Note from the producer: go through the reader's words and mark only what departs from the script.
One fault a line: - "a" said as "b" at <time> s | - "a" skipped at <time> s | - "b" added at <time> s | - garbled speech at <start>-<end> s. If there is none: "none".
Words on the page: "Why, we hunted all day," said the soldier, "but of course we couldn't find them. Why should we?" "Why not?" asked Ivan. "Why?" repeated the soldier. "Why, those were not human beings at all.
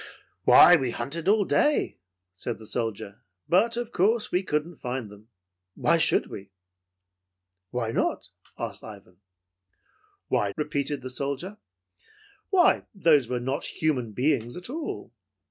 none